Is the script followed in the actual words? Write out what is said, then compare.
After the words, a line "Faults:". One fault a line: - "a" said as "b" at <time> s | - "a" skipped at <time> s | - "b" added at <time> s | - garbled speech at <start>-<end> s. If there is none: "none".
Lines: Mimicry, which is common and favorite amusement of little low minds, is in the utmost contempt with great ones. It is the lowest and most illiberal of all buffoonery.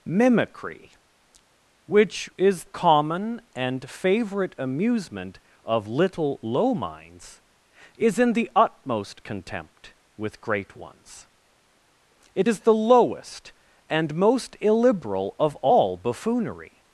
Mimicry, which is common and favorite amusement of little low minds, is in the utmost contempt with great ones. It is the lowest and most illiberal of all buffoonery.
Faults:
none